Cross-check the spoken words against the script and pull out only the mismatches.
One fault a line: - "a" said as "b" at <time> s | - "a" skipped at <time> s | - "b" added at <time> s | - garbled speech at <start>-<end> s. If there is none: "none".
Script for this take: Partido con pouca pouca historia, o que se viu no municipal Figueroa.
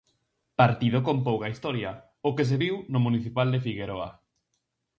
- "pouca" skipped at 1.5 s
- "de" added at 3.5 s